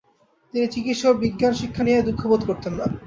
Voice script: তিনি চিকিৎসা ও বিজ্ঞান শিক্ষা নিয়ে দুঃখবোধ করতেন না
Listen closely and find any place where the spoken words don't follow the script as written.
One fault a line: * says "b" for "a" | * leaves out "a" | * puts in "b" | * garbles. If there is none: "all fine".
all fine